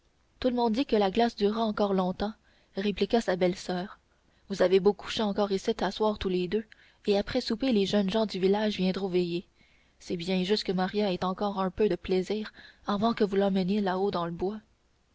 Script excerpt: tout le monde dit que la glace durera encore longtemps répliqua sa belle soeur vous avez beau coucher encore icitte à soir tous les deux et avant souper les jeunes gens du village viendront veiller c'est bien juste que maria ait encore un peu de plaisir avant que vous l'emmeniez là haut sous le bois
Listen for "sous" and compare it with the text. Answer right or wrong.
wrong